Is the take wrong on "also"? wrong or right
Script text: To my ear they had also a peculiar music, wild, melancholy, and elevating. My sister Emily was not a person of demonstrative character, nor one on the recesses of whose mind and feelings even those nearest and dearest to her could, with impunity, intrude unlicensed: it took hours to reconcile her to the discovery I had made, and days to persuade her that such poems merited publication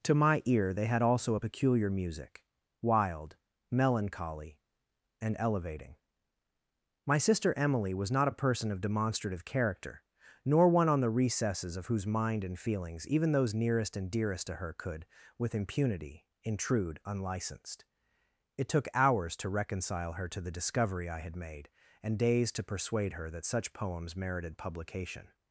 right